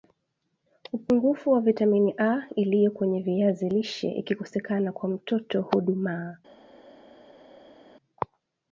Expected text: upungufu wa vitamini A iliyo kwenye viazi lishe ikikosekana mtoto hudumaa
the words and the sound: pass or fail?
fail